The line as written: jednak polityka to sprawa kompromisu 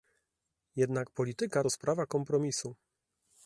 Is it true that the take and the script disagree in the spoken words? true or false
false